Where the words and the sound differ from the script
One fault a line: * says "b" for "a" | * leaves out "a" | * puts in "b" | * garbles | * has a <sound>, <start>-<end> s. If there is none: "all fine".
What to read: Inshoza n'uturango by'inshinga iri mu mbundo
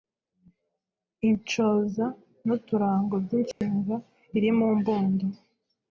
* has a dropout, 3.5-3.6 s